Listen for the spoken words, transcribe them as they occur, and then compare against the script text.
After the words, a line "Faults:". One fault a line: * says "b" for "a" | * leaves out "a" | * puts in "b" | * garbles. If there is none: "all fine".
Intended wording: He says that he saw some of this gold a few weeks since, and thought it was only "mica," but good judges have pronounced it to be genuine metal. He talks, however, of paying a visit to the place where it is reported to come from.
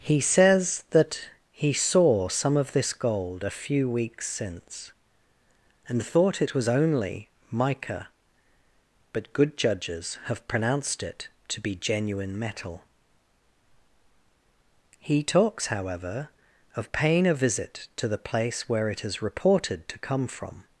He says that he saw some of this gold a few weeks since, and thought it was only "mica," but good judges have pronounced it to be genuine metal. He talks, however, of paying a visit to the place where it is reported to come from.
Faults:
all fine